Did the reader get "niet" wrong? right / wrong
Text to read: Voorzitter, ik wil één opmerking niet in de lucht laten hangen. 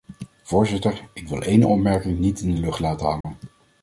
right